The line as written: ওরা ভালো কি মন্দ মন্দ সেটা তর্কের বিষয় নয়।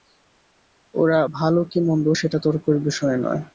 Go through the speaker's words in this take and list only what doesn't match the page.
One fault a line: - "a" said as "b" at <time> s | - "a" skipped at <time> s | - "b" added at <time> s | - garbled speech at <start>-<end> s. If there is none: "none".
- "মন্দ" skipped at 2.1 s